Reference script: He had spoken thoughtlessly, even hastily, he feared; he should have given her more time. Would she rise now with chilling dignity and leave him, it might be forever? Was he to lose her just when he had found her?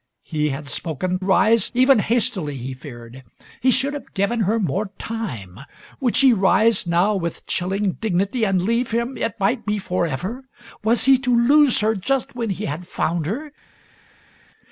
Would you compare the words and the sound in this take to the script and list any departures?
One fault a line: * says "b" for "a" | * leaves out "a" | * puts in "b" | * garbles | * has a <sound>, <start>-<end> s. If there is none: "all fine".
* says "rise" for "thoughtlessly"